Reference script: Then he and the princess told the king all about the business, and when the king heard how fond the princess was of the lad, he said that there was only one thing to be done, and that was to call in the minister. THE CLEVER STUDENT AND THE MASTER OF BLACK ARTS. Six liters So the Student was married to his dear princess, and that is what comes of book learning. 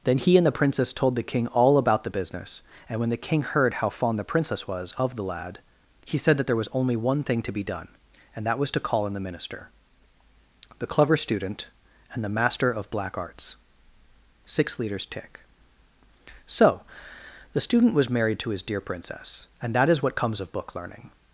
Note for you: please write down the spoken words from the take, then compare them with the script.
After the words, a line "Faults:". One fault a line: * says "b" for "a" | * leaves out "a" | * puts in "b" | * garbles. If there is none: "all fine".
Then he and the princess told the king all about the business, and when the king heard how fond the princess was of the lad, he said that there was only one thing to be done, and that was to call in the minister. THE CLEVER STUDENT AND THE MASTER OF BLACK ARTS. Six liters tick So the Student was married to his dear princess, and that is what comes of book learning.
Faults:
* puts in "tick"